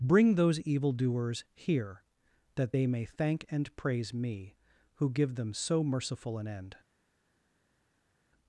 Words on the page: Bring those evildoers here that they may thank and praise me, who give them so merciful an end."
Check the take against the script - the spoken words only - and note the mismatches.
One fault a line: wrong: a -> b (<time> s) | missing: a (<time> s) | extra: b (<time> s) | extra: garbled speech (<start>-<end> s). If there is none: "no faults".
no faults